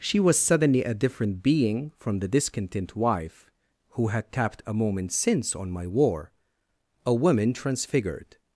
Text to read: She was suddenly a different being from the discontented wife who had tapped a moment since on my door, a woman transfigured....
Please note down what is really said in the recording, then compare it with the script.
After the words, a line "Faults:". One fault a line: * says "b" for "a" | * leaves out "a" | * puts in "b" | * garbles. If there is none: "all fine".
She was suddenly a different being from the discontent wife who had tapped a moment since on my war, a woman transfigured....
Faults:
* says "discontent" for "discontented"
* says "war" for "door"